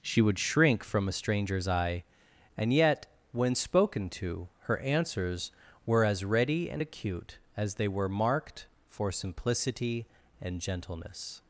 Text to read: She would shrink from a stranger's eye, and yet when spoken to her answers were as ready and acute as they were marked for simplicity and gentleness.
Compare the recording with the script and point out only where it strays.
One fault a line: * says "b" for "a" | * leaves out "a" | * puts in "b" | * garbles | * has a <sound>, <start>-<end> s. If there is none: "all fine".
all fine